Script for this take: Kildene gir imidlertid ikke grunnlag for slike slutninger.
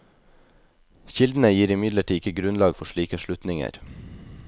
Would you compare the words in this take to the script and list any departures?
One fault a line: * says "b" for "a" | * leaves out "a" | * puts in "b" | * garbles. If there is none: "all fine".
all fine